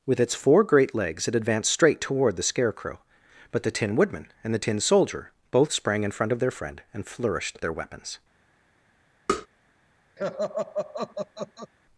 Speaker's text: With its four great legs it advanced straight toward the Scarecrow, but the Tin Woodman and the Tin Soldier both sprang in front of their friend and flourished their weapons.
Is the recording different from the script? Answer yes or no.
no